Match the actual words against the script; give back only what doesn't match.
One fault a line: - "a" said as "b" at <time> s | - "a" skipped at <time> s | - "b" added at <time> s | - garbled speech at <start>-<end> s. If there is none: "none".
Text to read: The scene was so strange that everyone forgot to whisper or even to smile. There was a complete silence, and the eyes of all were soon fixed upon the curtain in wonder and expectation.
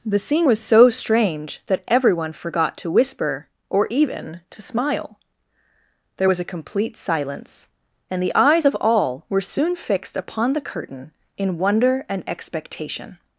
none